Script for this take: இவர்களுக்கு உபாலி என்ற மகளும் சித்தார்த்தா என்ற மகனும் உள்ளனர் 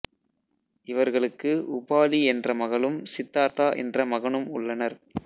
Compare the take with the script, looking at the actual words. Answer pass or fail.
pass